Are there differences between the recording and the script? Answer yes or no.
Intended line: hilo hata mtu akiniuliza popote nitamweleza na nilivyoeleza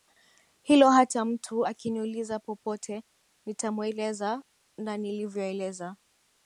no